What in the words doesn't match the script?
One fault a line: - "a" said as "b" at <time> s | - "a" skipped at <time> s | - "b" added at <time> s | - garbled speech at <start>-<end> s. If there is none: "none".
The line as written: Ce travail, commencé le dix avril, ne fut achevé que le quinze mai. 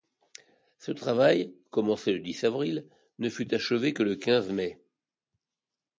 none